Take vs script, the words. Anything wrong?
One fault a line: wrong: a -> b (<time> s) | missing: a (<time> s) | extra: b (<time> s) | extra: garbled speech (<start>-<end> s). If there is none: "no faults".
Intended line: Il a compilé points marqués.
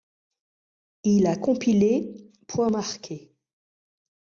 no faults